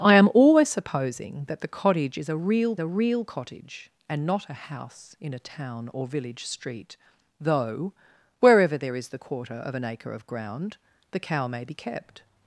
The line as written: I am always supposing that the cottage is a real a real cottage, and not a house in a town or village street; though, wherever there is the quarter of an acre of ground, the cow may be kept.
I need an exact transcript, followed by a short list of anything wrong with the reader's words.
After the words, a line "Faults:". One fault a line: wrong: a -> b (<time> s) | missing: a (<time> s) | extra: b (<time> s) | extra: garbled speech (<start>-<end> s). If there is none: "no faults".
I am always supposing that the cottage is a real a real cottage, and not a house in a town or village street; though, wherever there is the quarter of an acre of ground, the cow may be kept.
Faults:
no faults